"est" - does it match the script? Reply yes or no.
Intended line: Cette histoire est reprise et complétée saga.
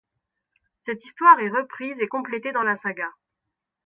yes